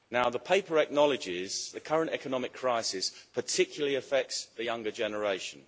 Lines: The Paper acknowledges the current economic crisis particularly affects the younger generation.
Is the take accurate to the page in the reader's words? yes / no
yes